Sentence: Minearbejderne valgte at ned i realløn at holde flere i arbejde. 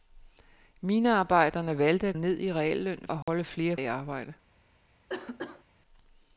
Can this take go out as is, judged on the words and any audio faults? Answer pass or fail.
fail